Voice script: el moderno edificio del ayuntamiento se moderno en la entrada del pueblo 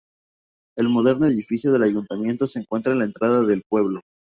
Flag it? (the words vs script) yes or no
yes